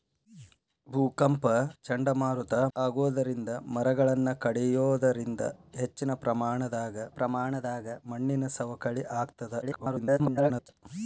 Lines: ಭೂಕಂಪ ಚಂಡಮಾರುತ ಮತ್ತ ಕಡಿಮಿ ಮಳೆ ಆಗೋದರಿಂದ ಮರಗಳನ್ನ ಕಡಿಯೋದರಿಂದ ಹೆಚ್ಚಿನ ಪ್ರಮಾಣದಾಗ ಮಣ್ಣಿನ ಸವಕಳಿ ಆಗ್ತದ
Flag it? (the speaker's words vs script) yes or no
yes